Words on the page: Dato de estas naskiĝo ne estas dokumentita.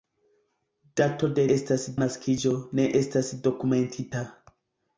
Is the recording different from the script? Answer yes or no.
no